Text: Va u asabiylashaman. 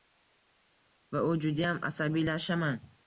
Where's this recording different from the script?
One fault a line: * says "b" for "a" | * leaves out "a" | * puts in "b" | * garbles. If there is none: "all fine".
* puts in "judayam"